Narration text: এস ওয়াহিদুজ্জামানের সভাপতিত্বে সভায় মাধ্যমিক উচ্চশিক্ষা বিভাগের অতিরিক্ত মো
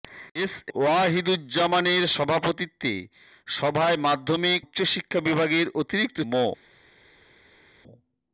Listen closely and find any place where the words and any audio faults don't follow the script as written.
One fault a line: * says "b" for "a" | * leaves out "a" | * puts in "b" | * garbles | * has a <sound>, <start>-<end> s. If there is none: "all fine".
all fine